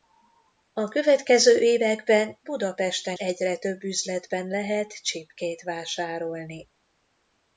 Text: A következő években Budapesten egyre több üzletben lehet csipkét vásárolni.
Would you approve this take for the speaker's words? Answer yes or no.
yes